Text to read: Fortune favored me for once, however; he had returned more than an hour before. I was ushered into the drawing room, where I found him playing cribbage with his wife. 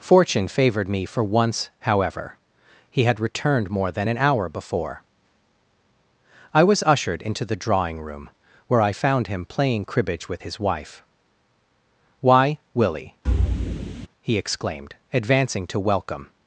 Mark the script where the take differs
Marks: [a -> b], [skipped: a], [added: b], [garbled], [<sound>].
Fortune favored me for once, however; he had returned more than an hour before. I was ushered into the drawing room, where I found him playing cribbage with his wife. [added: Why Willie he exclaimed advancing to welcome] [thud]